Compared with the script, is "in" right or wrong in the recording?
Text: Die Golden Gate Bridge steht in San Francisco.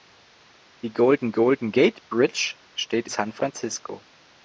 wrong